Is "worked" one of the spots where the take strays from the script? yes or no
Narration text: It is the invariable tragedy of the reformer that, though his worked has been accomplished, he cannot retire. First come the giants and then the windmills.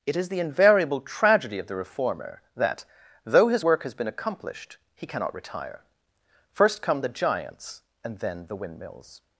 yes